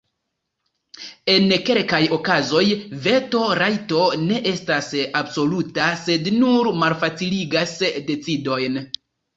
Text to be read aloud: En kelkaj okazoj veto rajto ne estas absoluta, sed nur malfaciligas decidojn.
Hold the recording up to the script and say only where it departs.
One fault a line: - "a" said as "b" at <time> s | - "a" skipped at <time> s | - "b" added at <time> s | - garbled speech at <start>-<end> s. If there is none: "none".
none